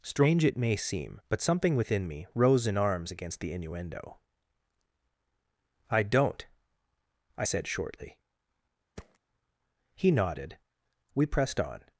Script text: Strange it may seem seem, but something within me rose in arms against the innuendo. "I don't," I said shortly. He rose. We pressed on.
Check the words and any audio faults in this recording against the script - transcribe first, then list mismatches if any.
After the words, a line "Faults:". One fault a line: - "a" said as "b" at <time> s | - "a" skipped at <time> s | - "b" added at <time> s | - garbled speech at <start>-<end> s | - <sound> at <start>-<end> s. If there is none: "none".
Strange it may seem, but something within me rose in arms against the innuendo. "I don't," I said shortly. He nodded. We pressed on.
Faults:
- "seem" skipped at 1.2 s
- thud at 9.0-9.2 s
- "rose" said as "nodded" at 10.1 s